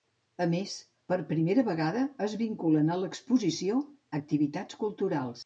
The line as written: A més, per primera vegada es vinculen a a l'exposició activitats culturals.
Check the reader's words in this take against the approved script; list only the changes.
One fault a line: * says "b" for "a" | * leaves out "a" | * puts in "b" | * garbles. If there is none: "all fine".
* leaves out "a"